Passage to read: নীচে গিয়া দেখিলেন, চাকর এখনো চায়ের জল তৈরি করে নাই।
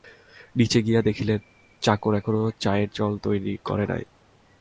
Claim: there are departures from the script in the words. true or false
false